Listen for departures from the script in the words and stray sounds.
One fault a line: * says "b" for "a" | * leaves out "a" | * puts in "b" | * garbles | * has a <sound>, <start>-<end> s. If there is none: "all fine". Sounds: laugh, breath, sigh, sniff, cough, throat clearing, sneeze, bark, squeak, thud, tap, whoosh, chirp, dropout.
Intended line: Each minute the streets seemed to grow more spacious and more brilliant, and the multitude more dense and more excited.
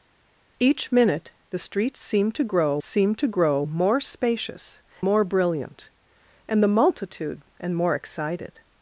* puts in "seemed to grow"
* leaves out "and"
* leaves out "more dense"